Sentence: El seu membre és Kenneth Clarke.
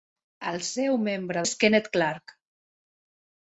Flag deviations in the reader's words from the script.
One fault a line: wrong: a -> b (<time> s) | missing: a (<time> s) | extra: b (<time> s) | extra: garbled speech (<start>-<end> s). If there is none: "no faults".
no faults